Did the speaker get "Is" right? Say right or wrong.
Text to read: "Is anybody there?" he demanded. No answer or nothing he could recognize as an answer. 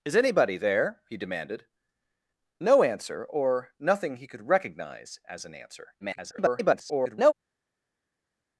right